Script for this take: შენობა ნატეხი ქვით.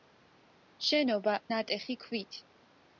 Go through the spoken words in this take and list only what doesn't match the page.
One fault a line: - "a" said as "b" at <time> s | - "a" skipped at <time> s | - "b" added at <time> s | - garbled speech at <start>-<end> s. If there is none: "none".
none